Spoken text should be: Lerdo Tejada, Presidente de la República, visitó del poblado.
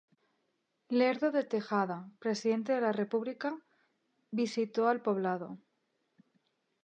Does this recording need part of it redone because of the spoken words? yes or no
yes